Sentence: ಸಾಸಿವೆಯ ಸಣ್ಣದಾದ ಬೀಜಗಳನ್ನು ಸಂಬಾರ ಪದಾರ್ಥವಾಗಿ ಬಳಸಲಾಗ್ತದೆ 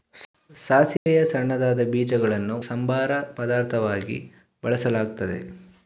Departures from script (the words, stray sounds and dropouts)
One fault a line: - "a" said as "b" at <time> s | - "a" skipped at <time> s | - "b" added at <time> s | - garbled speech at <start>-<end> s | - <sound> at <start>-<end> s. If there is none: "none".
- dropout at 1.0-1.1 s